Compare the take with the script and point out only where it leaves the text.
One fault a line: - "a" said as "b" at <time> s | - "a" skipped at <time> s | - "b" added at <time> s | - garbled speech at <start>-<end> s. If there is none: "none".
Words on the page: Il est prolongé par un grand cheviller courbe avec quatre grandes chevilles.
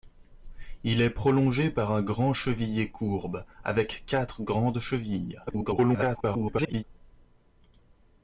- garbled speech at 5.5-6.8 s